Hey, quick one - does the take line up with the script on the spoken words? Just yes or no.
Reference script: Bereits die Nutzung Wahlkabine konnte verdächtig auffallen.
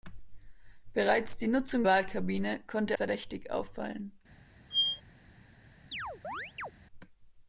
yes